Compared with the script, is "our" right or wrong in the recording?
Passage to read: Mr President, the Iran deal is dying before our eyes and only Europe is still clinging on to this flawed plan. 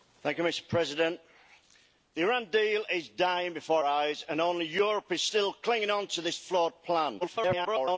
wrong